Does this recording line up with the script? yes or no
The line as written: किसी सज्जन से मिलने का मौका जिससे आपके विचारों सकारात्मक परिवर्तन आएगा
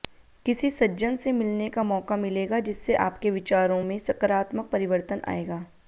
no